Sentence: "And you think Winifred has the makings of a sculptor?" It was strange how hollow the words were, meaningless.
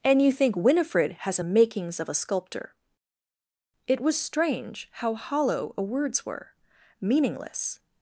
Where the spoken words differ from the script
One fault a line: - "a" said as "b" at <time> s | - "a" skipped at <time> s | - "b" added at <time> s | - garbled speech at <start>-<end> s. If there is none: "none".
- "the" said as "a" at 1.4 s
- "the" said as "a" at 5.8 s